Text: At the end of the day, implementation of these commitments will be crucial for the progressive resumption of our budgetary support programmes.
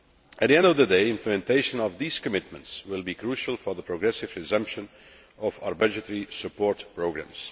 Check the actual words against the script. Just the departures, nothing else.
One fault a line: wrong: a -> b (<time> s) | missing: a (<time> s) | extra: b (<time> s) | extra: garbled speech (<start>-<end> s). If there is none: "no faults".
no faults